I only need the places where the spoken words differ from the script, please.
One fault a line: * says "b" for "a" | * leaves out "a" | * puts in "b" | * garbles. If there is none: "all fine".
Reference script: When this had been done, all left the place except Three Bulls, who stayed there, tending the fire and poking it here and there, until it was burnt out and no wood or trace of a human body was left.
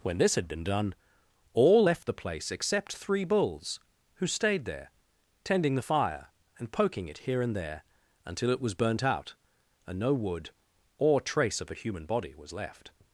all fine